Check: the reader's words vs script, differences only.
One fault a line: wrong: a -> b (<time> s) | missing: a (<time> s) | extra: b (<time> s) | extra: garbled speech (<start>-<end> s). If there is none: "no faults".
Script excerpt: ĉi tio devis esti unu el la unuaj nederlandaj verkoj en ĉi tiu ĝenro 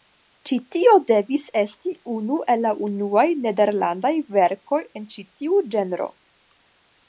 no faults